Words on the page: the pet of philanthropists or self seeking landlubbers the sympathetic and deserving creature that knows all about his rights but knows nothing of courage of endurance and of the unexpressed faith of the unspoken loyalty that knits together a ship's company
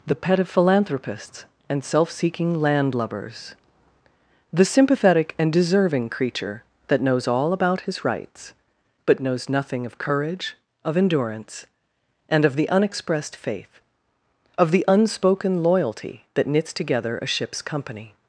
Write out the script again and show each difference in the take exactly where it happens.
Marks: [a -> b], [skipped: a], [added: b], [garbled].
the pet of philanthropists [or -> and] self seeking landlubbers the sympathetic and deserving creature that knows all about his rights but knows nothing of courage of endurance and of the unexpressed faith of the unspoken loyalty that knits together a ship's company